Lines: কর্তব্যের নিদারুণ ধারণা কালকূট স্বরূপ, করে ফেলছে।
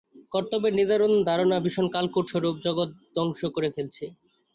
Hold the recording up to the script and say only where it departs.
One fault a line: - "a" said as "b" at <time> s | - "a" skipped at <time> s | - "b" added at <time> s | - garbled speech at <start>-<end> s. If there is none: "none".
- "ভীষণ" added at 1.6 s
- "জগৎ ধ্বংস" added at 2.7 s